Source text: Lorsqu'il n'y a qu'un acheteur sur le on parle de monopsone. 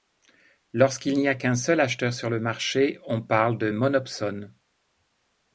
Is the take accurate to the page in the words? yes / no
no